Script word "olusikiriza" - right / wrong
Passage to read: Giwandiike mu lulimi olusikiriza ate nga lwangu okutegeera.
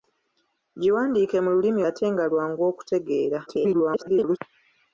wrong